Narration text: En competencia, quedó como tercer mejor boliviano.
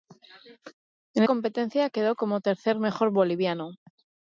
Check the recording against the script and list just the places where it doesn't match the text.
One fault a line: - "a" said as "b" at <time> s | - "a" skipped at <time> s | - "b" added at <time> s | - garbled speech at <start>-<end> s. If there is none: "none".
none